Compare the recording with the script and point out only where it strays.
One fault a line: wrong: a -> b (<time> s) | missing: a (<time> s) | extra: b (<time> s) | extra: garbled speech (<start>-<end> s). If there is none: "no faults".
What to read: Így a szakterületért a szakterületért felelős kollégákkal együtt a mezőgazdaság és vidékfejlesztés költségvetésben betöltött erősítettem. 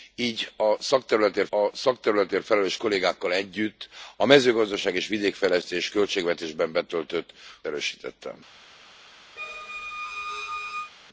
no faults